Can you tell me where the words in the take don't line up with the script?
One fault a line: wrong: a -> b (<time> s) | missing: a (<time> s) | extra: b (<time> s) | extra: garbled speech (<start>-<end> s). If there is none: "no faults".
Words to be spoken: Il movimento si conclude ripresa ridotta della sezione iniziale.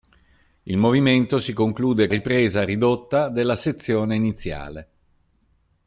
no faults